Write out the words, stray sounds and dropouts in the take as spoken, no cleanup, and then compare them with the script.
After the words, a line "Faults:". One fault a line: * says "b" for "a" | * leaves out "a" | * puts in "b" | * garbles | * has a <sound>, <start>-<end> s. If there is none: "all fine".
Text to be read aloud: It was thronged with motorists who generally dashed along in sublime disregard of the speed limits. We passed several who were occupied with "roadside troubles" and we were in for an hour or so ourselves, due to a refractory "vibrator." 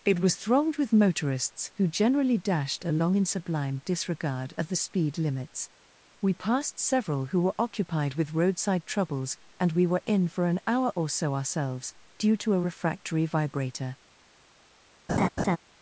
It was thronged with motorists who generally dashed along in sublime disregard of the speed limits. We passed several who were occupied with "roadside troubles" and we were in for an hour or so ourselves, due to a refractory "vibrator."
Faults:
* has a laugh, 15.1-15.6 s